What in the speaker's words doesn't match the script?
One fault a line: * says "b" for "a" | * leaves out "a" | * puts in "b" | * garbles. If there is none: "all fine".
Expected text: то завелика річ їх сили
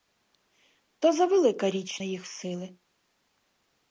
all fine